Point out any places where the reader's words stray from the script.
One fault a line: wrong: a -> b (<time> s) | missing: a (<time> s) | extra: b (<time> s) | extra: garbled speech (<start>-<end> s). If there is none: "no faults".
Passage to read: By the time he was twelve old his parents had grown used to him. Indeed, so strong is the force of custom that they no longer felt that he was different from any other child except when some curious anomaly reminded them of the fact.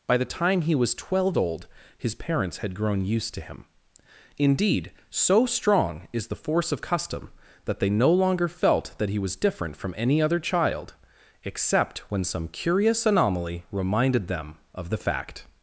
no faults